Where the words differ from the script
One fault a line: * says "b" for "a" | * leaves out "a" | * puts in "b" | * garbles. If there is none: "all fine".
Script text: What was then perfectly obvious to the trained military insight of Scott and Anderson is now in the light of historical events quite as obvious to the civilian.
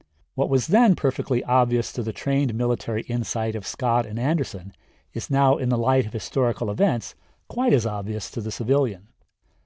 all fine